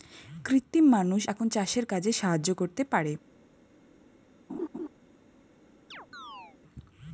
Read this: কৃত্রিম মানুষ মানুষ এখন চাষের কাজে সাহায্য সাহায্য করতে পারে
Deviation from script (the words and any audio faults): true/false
true